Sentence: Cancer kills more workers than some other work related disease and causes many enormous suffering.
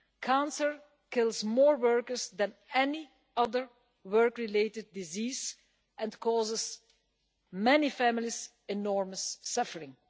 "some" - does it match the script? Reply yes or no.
no